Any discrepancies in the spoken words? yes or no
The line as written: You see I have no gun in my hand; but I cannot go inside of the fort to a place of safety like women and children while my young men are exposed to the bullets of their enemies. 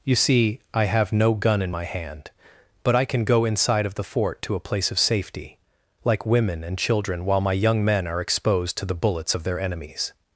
yes